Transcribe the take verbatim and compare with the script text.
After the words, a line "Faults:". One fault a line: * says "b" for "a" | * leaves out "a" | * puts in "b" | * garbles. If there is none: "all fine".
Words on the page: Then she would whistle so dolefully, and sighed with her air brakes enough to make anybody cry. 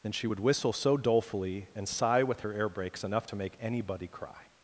Then she would whistle so dolefully, and sigh with her air brakes enough to make anybody cry.
Faults:
* says "sigh" for "sighed"